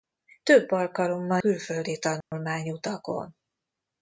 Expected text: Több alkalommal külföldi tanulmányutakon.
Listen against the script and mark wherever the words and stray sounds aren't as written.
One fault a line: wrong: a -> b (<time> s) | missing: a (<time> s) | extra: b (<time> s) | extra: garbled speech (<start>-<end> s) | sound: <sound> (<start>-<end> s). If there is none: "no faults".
sound: dropout (2.2-2.3 s)